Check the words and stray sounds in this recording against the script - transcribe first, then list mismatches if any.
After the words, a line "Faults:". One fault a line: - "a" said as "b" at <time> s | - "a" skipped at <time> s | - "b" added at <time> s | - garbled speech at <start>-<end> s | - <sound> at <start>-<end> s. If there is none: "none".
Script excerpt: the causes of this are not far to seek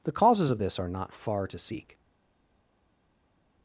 the causes of this are not far to seek
Faults:
none